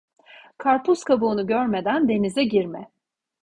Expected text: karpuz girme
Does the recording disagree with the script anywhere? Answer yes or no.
yes